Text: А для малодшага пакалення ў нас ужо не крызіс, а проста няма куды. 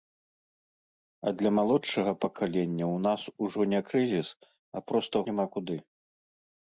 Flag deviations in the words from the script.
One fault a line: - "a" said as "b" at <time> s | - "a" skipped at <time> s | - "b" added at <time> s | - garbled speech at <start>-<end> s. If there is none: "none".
none